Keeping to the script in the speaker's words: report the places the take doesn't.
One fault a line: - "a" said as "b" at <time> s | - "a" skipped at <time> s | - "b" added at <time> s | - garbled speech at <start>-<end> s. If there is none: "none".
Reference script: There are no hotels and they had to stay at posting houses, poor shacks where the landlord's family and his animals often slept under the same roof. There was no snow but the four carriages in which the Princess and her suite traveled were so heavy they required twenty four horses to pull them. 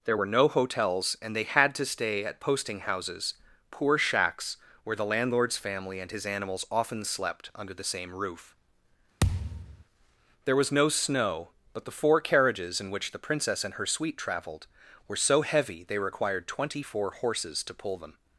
- "are" said as "were" at 0.1 s